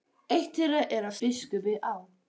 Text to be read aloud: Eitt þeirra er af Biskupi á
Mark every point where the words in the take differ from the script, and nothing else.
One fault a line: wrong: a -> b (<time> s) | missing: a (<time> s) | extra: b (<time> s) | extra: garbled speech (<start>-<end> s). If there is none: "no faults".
no faults